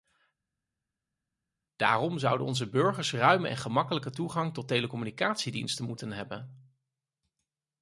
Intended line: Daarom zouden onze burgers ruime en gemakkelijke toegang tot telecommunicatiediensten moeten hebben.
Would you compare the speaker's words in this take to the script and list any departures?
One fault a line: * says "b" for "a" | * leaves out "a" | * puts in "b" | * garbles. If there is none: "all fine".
all fine